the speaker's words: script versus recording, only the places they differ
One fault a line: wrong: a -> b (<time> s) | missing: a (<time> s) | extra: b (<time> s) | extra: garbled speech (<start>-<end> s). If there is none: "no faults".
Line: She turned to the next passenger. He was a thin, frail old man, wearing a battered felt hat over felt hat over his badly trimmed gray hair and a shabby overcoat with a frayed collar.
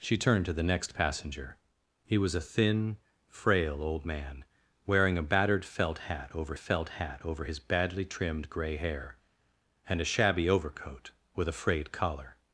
no faults